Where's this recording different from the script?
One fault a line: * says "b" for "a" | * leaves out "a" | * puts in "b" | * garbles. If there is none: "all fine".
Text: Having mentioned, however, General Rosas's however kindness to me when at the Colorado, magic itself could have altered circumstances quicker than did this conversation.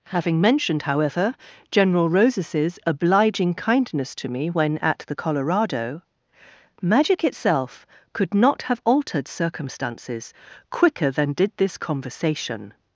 * says "obliging" for "however"
* puts in "not"